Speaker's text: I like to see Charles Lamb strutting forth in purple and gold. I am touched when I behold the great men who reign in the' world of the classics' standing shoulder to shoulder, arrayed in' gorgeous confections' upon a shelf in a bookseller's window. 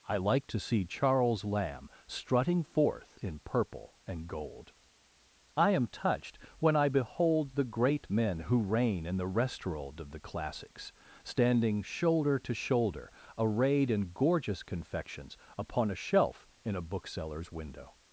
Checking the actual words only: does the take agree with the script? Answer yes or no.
no